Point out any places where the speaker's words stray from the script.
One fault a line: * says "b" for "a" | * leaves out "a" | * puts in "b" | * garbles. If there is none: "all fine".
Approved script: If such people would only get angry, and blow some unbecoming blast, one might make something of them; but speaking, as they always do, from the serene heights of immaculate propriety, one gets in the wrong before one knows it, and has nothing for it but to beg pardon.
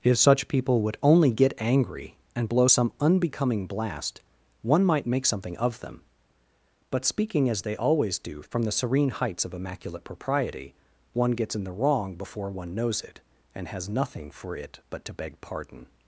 all fine